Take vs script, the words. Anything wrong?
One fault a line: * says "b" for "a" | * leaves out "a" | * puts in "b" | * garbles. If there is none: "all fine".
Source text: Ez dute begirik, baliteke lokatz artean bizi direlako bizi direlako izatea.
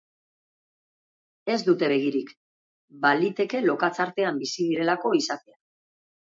* leaves out "bizi direlako"